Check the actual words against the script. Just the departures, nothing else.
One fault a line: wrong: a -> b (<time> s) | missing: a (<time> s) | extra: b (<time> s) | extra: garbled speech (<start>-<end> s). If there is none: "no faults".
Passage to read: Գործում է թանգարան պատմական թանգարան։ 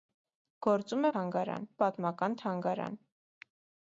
no faults